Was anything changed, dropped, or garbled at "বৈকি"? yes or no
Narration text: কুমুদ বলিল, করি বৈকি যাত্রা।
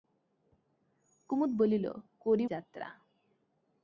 yes